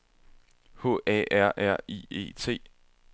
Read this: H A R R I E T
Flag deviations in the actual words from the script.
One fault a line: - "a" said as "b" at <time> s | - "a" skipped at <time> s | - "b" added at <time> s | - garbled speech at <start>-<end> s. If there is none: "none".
none